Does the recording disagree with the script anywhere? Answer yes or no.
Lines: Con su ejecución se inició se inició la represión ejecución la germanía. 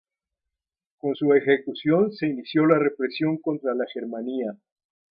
yes